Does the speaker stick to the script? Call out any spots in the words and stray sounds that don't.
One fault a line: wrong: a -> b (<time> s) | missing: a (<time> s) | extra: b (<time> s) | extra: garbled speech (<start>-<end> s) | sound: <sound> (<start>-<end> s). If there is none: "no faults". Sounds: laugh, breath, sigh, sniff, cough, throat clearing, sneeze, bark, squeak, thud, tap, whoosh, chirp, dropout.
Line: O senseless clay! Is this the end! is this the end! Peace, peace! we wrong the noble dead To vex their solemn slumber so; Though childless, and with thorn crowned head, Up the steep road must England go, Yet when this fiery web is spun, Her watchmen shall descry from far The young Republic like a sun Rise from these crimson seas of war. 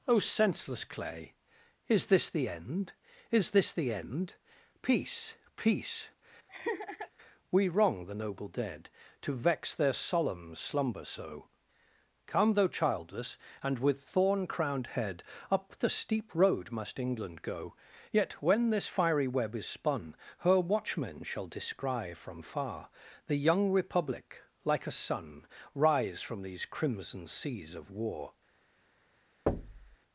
sound: laugh (6.5-7.1 s)
extra: come (12.3 s)
sound: thud (29.5-30.0 s)